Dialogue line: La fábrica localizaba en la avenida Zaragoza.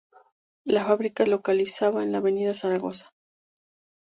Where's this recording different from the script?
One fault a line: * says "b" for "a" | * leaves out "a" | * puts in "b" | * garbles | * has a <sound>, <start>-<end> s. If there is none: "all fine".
all fine